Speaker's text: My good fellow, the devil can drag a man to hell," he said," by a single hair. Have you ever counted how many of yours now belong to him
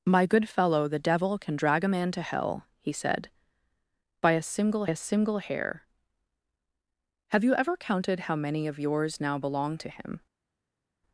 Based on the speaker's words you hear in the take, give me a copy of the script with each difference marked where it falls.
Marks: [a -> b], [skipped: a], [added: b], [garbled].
My good fellow, the devil can drag a man to hell," he said," by a single [added: a single] hair. Have you ever counted how many of yours now belong to him